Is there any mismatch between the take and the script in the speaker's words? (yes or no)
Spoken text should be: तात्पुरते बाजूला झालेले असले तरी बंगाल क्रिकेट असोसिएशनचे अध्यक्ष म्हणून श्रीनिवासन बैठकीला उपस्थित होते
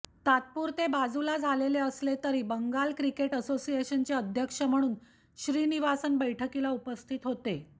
no